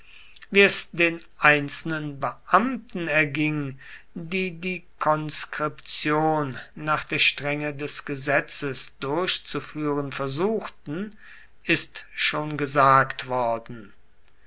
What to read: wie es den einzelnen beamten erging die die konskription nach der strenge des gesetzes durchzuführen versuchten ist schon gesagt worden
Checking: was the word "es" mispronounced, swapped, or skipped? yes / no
no